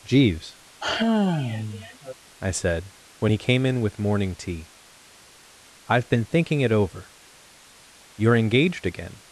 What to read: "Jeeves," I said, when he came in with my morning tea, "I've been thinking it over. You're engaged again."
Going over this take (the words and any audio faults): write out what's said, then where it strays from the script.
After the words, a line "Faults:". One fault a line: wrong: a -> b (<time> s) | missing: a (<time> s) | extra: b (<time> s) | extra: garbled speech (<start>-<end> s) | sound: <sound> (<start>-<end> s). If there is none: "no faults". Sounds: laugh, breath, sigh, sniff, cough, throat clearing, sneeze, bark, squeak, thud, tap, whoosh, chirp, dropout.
"Jeeves," I said, when he came in with morning tea, "I've been thinking it over. You're engaged again."
Faults:
sound: sigh (0.8-2.1 s)
missing: my (4.0 s)